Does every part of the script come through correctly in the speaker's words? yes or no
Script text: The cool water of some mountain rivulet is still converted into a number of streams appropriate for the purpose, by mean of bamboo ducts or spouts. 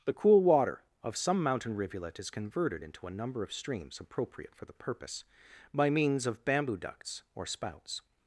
no